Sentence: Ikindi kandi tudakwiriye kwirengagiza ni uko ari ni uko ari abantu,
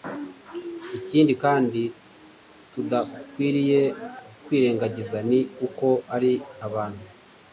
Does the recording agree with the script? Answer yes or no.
no